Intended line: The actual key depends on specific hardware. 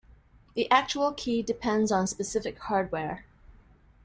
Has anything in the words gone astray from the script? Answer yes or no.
no